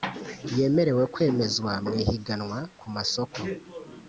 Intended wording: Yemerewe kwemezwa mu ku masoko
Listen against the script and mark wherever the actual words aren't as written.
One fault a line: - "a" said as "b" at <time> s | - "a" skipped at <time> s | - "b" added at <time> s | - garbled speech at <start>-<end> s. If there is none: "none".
- "ihiganwa" added at 2.0 s